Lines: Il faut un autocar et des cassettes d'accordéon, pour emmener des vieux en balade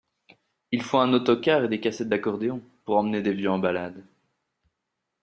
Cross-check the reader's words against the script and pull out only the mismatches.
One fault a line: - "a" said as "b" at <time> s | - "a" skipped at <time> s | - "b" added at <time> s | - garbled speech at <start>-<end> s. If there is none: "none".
none